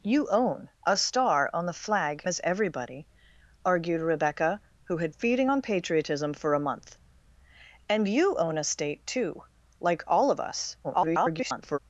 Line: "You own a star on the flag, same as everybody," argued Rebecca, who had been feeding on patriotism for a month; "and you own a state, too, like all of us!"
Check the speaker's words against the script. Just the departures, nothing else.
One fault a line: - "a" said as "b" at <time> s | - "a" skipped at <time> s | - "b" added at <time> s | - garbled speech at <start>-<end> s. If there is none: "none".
- "same" skipped at 2.2 s
- "been" skipped at 5.1 s
- garbled speech at 10.8-11.8 s